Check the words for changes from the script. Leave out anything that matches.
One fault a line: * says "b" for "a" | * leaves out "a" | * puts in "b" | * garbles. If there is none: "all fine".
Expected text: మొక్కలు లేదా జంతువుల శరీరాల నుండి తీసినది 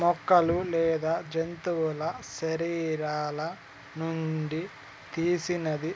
all fine